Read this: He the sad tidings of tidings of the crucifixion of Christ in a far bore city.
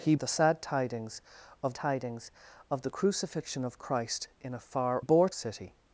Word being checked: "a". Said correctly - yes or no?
yes